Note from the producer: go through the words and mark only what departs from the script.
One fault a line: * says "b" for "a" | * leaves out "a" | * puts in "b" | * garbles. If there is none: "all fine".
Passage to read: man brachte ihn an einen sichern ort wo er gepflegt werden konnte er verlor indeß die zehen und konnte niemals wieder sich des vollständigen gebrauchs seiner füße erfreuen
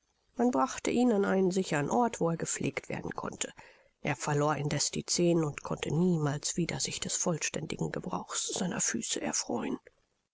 all fine